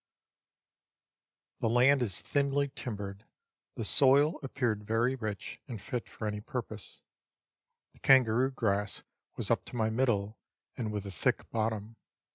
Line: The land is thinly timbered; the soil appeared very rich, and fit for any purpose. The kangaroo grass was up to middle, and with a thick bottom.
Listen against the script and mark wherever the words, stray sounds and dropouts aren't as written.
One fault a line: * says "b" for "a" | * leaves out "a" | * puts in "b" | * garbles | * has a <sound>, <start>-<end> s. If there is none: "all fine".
* puts in "my"